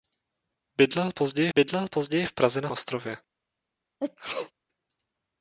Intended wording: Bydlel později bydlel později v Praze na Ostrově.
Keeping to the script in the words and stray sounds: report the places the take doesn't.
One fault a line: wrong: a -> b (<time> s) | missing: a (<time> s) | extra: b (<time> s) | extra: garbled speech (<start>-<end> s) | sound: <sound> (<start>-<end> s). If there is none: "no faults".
sound: sneeze (4.0-4.5 s)